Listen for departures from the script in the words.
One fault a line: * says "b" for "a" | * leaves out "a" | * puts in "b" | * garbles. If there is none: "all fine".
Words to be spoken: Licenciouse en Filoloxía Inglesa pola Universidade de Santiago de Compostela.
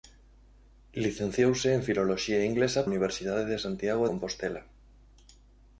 * leaves out "pola"
* leaves out "de"